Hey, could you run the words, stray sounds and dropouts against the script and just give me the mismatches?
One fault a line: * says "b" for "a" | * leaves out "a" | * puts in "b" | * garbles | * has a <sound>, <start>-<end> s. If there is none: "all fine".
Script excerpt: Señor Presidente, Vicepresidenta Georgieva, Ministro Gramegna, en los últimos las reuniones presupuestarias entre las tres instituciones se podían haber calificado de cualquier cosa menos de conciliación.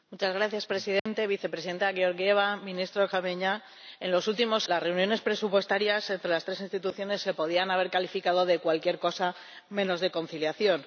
* has a dropout, 1.0-1.1 s